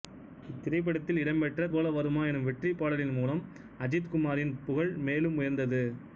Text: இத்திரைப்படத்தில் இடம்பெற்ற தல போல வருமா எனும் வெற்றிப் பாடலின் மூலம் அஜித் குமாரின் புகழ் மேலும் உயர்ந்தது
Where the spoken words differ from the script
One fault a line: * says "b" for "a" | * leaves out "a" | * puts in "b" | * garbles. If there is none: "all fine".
* leaves out "தல"